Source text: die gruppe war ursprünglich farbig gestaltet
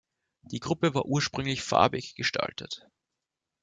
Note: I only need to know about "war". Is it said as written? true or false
true